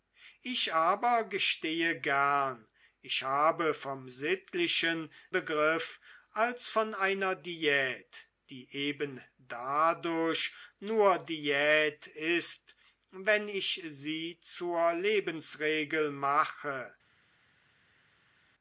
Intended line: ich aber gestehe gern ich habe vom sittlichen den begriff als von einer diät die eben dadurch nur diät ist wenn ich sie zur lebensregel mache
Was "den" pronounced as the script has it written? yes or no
no